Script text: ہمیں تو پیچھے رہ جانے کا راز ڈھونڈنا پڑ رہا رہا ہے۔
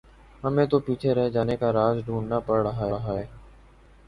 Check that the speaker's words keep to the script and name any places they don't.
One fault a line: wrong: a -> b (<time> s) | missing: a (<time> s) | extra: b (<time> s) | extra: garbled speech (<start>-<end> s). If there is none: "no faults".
no faults